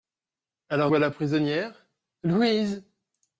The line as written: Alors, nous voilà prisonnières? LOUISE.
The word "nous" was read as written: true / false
false